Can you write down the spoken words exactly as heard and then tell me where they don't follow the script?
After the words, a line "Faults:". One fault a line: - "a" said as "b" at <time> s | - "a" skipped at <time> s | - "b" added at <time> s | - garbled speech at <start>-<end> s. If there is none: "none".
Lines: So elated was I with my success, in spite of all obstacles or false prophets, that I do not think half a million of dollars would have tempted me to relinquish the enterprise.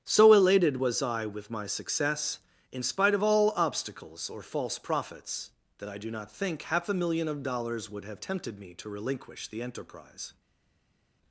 So elated was I with my success, in spite of all obstacles or false prophets, that I do not think half a million of dollars would have tempted me to relinquish the enterprise.
Faults:
none